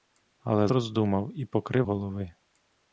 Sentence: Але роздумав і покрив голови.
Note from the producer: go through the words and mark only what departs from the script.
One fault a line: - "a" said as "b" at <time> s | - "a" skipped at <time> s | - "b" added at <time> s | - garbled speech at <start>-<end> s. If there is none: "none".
none